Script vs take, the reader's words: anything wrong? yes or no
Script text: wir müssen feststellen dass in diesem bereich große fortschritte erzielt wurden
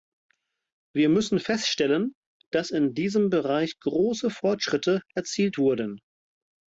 no